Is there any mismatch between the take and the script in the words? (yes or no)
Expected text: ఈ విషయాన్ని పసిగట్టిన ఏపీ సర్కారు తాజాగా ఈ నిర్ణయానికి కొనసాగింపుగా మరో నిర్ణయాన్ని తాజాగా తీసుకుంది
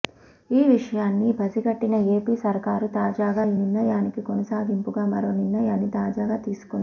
no